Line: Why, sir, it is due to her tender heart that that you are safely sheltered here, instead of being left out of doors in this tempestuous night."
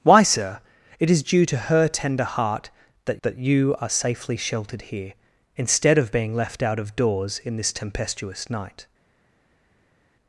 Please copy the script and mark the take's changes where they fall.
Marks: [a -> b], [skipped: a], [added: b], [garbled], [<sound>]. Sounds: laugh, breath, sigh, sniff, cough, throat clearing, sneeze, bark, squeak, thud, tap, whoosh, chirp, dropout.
Why, sir, it is due to her tender heart that that you are safely sheltered here, instead of being left out of doors in this tempestuous night."